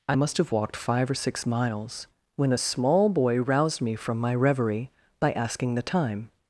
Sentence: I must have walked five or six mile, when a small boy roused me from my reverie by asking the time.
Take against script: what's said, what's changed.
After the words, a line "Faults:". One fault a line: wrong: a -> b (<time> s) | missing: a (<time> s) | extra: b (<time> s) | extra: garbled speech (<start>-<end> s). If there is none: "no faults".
I must have walked five or six miles, when a small boy roused me from my reverie by asking the time.
Faults:
wrong: mile -> miles (1.5 s)